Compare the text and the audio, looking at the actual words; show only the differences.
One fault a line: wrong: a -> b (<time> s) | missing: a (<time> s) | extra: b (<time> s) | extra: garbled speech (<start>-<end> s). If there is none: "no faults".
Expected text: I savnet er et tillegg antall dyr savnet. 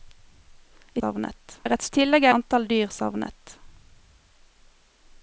no faults